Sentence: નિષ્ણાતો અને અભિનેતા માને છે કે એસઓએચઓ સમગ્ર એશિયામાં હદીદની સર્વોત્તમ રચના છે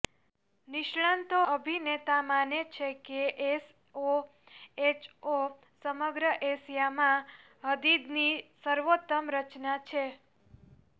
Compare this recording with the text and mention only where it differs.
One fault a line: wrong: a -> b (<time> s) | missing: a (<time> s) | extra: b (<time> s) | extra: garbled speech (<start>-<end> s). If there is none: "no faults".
missing: અને (1.4 s)